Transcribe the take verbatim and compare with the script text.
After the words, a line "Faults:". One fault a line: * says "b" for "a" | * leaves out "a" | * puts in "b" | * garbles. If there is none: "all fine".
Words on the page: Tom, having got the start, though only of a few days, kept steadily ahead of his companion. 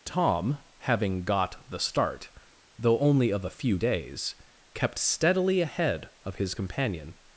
Tom, having got the start, though only of a few days, kept steadily ahead of his companion.
Faults:
all fine